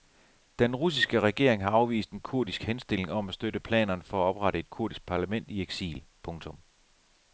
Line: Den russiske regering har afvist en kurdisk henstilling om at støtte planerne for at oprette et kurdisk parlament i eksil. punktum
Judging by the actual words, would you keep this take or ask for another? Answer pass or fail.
pass